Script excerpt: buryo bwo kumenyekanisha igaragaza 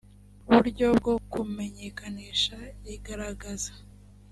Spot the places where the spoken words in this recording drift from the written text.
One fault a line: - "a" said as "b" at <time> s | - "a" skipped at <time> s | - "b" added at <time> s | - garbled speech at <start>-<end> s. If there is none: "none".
none